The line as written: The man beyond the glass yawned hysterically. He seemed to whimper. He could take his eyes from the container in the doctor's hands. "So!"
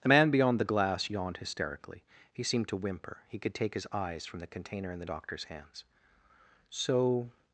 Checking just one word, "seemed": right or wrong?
right